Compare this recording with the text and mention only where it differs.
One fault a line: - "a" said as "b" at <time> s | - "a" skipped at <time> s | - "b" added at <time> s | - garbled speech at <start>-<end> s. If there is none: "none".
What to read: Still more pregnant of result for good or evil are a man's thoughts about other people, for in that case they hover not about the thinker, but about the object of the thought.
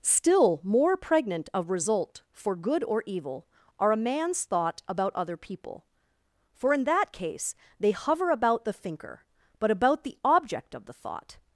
- "thoughts" said as "thought" at 4.4 s
- "not" skipped at 8.3 s